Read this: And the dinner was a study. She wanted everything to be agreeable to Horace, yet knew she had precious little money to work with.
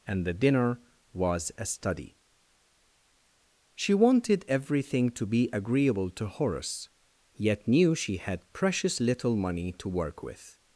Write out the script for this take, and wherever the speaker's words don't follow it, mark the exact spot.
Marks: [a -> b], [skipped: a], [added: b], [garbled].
And the dinner was a study. She wanted everything to be agreeable to Horace, yet knew she had precious little money to work with.